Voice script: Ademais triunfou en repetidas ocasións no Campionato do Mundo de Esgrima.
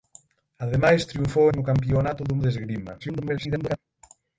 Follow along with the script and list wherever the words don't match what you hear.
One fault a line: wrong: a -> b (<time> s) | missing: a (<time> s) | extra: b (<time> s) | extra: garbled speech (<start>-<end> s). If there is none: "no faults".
missing: en repetidas ocasións (1.5 s)
missing: Mundo (2.3 s)
extra: garbled speech (3.0-3.8 s)